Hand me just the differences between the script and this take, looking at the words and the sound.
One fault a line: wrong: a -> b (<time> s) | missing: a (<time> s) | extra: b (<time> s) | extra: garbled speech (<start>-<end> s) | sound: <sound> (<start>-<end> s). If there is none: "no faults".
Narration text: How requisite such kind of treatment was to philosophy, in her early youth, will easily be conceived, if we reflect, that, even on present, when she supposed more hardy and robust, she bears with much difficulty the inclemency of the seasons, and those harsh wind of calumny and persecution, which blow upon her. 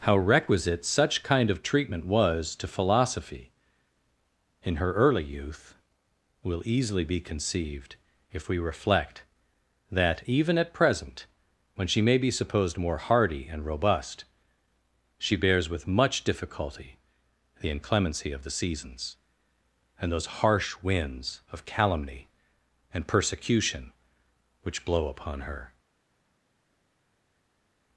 wrong: on -> at (10.6 s)
extra: may be (12.0 s)
wrong: wind -> winds (20.8 s)